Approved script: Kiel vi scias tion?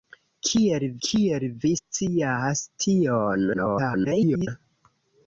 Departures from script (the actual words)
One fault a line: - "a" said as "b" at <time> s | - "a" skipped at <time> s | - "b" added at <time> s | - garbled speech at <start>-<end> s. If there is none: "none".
- "kiel" added at 1.1 s
- garbled speech at 3.5-4.5 s